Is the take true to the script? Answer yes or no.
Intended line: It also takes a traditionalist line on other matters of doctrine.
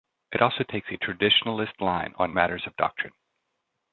no